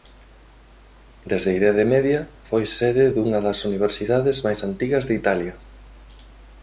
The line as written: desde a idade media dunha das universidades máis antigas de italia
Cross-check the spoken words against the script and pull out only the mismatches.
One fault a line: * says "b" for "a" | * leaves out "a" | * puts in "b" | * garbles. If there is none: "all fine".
* puts in "foi sede"